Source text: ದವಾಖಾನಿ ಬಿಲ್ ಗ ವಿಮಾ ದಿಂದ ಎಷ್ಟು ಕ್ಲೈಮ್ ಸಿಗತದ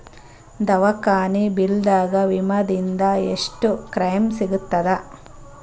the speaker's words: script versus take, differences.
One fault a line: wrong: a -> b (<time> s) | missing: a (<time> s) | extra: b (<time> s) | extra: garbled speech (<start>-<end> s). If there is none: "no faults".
no faults